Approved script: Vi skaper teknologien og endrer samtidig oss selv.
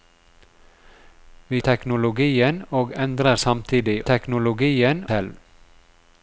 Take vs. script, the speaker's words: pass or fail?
fail